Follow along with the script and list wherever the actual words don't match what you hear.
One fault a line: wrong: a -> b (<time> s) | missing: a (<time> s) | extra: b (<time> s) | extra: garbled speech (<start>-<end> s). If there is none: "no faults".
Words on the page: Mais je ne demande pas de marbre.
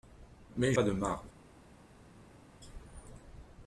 missing: je ne demande (0.7 s)